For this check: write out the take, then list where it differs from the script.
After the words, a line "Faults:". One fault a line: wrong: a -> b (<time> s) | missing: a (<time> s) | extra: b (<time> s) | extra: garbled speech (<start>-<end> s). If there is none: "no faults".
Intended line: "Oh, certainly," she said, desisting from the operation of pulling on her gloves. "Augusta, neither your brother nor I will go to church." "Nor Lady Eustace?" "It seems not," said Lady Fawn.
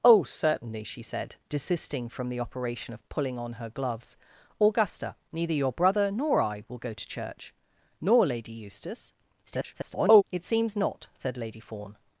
"Oh, certainly," she said, desisting from the operation of pulling on her gloves. "Augusta, neither your brother nor I will go to church." "Nor Lady Eustace?" [garbled] "It seems not," said Lady Fawn.
Faults:
extra: garbled speech (9.5-10.2 s)